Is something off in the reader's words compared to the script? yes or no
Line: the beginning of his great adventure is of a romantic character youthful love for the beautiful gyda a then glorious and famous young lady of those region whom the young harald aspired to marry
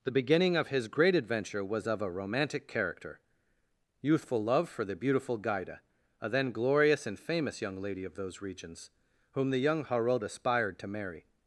yes